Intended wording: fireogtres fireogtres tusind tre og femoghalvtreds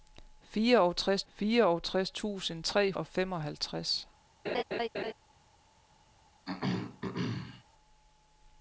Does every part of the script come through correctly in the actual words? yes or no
yes